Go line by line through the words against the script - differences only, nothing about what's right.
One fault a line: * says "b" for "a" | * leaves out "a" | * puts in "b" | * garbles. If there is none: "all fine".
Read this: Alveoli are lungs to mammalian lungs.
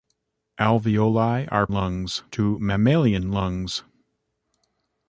all fine